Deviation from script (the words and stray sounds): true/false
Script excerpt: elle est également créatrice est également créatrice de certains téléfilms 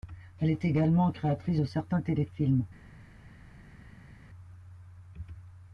true